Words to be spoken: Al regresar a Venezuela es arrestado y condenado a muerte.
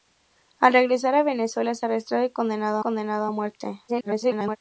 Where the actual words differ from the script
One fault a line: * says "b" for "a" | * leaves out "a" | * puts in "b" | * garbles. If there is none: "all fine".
* puts in "condenado"
* garbles